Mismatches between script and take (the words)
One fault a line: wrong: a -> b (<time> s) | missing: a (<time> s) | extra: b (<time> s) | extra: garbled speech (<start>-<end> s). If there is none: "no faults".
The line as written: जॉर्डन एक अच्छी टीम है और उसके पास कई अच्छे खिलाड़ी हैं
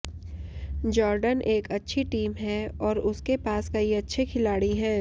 no faults